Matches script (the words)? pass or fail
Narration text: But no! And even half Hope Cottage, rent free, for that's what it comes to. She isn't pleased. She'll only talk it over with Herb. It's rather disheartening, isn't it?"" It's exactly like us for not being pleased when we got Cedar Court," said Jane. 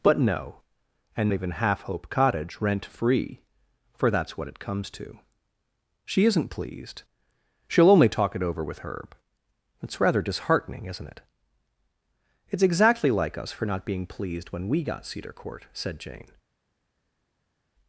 pass